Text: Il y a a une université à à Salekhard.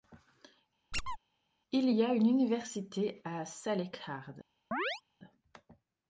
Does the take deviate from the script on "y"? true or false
false